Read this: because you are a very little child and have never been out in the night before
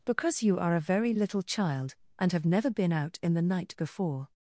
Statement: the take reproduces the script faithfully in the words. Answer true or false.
true